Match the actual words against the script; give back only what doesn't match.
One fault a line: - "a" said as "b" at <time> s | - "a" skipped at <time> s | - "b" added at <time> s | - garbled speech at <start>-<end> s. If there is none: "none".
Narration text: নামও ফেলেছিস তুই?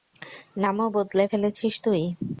- "বদলে" added at 0.9 s